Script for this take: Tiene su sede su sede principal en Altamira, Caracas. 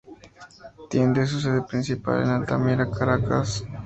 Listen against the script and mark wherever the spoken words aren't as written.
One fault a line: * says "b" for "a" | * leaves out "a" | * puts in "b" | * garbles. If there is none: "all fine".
* leaves out "su sede"